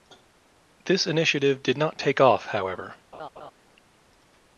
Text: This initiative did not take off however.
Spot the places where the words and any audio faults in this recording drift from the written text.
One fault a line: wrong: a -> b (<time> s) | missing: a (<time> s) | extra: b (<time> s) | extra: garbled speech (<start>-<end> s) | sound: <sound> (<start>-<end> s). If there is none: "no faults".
sound: laugh (3.1-3.5 s)